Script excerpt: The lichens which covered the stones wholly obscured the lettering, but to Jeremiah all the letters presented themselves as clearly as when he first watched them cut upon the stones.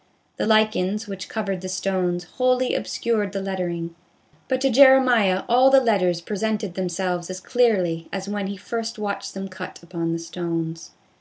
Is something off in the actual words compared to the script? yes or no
no